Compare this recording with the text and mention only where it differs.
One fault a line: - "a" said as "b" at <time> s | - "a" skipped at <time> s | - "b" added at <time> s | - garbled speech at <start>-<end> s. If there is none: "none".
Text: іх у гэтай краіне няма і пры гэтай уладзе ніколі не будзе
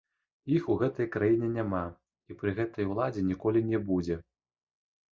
none